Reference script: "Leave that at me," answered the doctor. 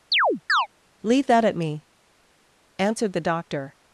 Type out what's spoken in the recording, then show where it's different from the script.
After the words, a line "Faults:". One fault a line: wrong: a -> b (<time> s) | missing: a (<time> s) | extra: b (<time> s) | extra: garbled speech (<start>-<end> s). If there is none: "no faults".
"Leave that at me," answered the doctor.
Faults:
no faults